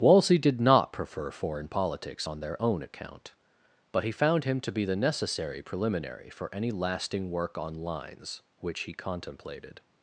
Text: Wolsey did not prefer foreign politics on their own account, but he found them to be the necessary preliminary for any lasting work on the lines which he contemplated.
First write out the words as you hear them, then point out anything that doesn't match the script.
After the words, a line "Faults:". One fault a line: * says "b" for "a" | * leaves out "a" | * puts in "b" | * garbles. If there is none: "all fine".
Wolsey did not prefer foreign politics on their own account, but he found him to be the necessary preliminary for any lasting work on lines which he contemplated.
Faults:
* says "him" for "them"
* leaves out "the"